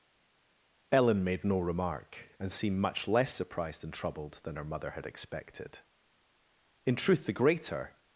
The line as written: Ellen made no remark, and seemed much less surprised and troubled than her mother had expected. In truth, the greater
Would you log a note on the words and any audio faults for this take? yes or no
no